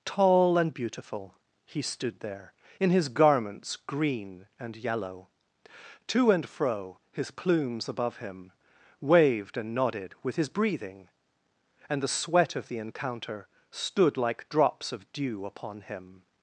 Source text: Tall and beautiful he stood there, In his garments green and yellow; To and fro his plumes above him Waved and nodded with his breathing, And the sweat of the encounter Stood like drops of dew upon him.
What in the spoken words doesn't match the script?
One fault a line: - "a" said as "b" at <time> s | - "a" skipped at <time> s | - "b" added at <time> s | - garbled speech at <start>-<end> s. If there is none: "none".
none